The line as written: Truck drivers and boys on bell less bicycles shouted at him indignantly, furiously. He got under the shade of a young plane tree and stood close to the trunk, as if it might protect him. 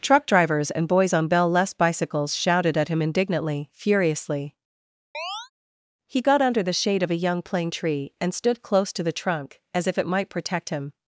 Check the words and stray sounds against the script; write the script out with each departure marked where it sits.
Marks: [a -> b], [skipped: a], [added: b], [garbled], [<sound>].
Truck drivers and boys on bell less bicycles shouted at him indignantly, furiously. [chirp] He got under the shade of a young plane tree and stood close to the trunk, as if it might protect him.